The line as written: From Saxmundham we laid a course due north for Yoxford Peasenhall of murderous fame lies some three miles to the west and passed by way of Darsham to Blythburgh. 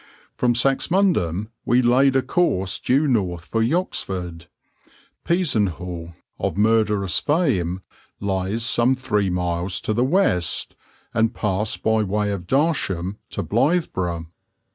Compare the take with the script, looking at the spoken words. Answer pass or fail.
pass